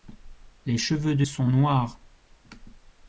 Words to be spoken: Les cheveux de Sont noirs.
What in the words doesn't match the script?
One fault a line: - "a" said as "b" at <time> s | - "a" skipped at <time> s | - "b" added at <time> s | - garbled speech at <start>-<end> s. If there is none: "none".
none